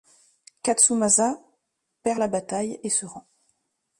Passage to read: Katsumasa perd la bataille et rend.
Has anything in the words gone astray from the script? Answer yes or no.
yes